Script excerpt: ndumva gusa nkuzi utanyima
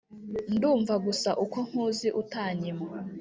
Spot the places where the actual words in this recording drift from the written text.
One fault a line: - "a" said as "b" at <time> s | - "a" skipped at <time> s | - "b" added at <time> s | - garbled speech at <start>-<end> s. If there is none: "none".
- "uko" added at 1.4 s